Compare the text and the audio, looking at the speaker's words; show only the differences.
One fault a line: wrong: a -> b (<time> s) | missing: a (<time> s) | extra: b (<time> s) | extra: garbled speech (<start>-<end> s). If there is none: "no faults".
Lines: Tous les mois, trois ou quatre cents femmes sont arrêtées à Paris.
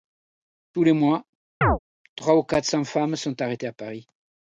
no faults